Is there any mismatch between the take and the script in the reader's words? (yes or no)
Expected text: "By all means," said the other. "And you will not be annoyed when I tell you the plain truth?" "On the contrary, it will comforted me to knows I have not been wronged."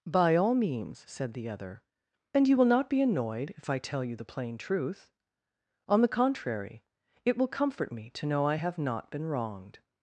yes